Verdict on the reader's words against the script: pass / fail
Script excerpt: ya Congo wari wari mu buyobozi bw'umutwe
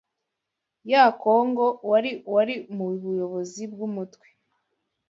pass